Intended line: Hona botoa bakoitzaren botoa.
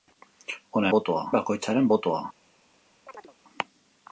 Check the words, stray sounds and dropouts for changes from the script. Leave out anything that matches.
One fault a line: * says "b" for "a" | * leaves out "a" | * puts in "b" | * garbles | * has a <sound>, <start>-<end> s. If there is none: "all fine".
* has a chirp, 3.1-3.4 s